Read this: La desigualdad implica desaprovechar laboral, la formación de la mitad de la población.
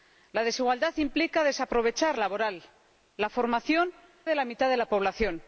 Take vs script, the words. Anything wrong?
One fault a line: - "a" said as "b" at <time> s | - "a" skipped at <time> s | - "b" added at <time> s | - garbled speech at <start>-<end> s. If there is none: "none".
none